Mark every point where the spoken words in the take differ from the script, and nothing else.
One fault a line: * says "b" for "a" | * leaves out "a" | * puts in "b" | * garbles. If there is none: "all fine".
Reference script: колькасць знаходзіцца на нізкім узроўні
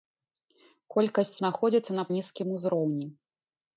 all fine